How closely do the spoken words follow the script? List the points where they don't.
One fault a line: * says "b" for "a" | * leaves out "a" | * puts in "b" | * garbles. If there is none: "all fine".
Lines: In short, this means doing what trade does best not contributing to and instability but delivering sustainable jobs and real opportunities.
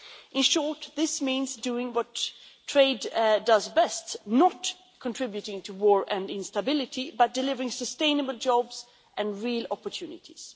* puts in "war"